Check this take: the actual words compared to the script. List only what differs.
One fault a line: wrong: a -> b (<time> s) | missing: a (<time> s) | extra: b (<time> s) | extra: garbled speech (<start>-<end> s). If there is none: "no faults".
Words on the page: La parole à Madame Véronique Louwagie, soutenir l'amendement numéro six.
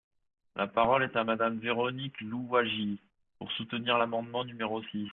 extra: est (1.0 s)
extra: pour (3.4 s)